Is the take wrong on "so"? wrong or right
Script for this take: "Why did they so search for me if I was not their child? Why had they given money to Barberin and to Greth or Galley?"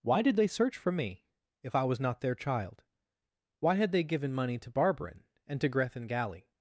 wrong